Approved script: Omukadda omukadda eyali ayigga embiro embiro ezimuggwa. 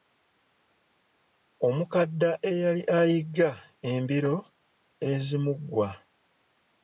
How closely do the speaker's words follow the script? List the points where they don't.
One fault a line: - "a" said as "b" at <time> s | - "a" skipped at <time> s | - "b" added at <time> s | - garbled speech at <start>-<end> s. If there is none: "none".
- "omukadda" skipped at 2.3 s
- "embiro" skipped at 4.3 s